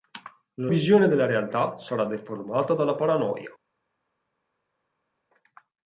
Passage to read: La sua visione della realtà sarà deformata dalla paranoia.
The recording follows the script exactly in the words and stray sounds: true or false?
false